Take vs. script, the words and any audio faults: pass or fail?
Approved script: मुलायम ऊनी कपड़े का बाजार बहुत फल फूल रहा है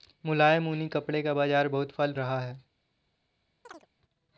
fail